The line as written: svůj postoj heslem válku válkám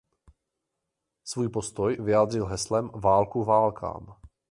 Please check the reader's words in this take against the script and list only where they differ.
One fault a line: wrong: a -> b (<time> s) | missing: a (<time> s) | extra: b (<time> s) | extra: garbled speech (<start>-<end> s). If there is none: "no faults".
extra: vyjádřil (2.0 s)